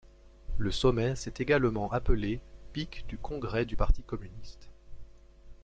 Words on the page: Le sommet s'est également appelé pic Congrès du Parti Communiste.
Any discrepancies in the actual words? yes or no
yes